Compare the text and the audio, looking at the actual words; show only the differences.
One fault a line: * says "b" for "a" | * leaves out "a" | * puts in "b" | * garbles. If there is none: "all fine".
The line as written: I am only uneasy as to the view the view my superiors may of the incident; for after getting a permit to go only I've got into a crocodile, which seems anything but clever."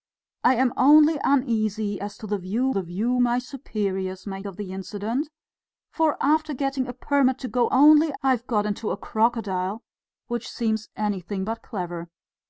all fine